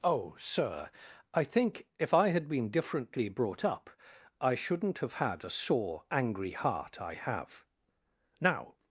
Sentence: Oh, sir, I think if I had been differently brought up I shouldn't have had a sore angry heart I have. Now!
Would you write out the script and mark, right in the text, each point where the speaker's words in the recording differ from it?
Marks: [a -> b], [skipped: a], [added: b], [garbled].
Oh, sir, I think if I had been differently brought up I shouldn't have had a sore angry heart I have. Now!